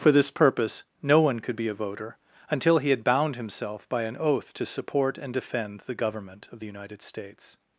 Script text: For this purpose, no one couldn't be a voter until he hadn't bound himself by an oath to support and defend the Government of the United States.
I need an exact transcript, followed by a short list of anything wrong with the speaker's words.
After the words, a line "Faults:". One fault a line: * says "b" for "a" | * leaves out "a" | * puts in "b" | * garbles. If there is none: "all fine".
For this purpose, no one could be a voter until he had bound himself by an oath to support and defend the Government of the United States.
Faults:
* says "could" for "couldn't"
* says "had" for "hadn't"